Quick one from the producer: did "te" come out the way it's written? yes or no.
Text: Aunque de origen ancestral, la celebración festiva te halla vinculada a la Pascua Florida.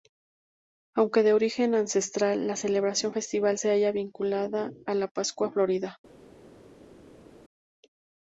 no